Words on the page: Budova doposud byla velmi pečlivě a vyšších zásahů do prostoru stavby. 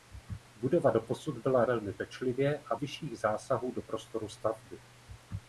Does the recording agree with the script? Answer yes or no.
yes